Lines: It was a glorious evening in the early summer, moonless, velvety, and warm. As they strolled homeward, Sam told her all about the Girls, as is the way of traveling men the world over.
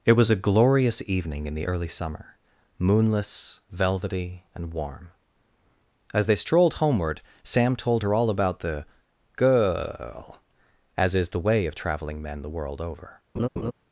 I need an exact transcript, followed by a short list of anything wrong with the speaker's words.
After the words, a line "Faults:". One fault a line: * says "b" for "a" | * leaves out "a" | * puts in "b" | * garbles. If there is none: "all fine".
It was a glorious evening in the early summer, moonless, velvety, and warm. As they strolled homeward, Sam told her all about the Girl, as is the way of traveling men the world over.
Faults:
* says "Girl" for "Girls"